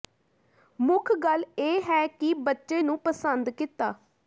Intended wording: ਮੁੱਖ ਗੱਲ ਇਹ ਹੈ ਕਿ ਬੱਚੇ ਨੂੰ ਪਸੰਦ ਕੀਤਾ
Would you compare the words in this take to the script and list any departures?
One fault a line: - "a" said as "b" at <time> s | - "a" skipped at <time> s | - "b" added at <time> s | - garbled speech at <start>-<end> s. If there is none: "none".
none